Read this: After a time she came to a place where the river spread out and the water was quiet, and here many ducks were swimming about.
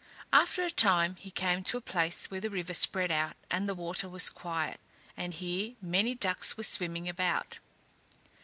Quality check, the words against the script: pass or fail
fail